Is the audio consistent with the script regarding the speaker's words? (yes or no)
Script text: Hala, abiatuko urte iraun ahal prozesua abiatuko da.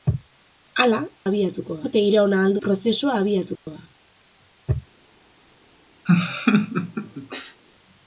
yes